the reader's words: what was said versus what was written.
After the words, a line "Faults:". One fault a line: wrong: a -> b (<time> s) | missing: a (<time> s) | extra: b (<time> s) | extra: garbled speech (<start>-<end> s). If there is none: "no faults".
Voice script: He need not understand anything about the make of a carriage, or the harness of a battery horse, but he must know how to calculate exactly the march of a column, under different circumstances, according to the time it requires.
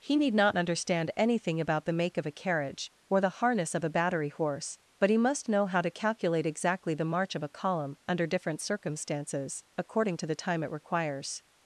He need not understand anything about the make of a carriage, or the harness of a battery horse, but he must know how to calculate exactly the march of a column, under different circumstances, according to the time it requires.
Faults:
no faults